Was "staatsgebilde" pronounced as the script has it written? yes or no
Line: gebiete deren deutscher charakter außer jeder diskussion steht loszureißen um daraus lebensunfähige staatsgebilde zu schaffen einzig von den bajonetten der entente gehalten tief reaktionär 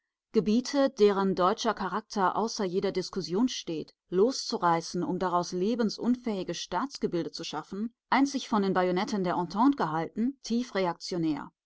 yes